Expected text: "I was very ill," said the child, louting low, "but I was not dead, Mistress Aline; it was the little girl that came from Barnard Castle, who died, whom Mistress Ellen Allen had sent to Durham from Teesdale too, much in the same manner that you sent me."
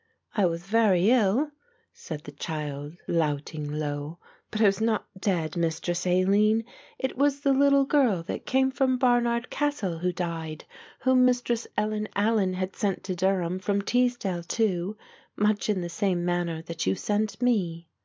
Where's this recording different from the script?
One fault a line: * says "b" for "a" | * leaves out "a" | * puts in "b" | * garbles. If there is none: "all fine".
all fine